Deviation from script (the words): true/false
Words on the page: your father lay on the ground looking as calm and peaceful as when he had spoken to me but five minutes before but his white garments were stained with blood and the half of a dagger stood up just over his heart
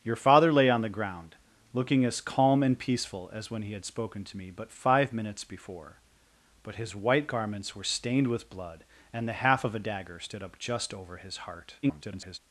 true